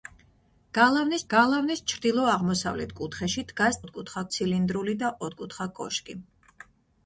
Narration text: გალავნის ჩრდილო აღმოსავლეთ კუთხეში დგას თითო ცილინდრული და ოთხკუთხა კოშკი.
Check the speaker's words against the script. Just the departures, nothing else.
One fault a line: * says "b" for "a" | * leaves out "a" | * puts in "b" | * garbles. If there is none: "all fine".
* puts in "გალავნის"
* says "ოთხკუთხა" for "თითო"